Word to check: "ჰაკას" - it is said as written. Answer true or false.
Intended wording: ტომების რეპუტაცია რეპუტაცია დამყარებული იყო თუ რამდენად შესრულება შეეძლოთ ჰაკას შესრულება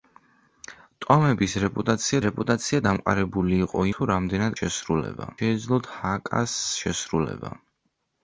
true